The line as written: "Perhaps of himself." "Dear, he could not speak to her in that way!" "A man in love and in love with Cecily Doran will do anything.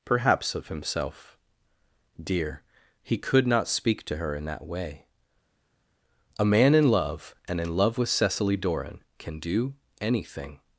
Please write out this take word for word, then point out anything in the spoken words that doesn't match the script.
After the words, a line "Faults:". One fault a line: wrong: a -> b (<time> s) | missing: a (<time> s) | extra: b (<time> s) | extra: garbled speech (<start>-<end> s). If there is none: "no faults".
"Perhaps of himself." "Dear, he could not speak to her in that way!" "A man in love and in love with Cecily Doran can do anything.
Faults:
wrong: will -> can (9.2 s)